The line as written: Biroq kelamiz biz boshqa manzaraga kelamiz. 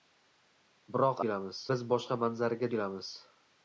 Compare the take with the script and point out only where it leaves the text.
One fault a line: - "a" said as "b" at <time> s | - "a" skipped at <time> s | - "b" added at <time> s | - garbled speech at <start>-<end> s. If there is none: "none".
none